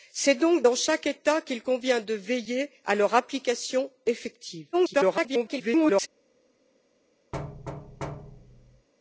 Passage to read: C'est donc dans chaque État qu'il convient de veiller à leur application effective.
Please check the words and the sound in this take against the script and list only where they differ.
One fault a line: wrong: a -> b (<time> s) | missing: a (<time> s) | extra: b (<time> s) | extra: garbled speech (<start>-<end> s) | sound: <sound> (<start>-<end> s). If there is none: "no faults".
extra: garbled speech (4.7-6.1 s)
sound: thud (7.3-8.9 s)